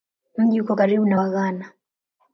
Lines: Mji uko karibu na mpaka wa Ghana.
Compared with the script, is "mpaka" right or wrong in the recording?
wrong